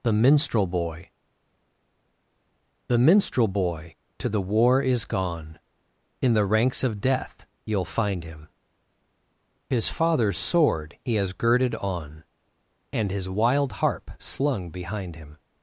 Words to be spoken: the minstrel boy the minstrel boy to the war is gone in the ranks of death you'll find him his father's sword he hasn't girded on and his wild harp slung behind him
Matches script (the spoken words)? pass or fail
fail